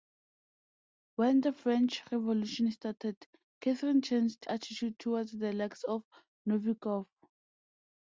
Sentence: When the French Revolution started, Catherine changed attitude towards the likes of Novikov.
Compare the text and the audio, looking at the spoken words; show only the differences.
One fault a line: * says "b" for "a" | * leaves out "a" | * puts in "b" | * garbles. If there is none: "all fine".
all fine